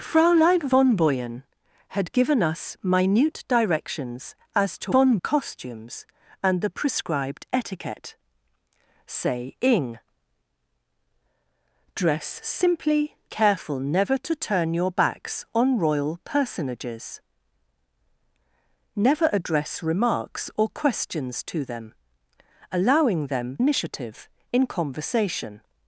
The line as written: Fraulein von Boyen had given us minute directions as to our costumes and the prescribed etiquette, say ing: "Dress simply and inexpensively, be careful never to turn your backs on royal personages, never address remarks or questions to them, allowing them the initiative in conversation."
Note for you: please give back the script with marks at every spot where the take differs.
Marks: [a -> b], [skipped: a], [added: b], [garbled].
Fraulein von Boyen had given us minute directions as to [our -> von] costumes and the prescribed etiquette, say ing: "Dress simply [skipped: and inexpensively, be] careful never to turn your backs on royal personages, never address remarks or questions to them, allowing them [skipped: the] initiative in conversation."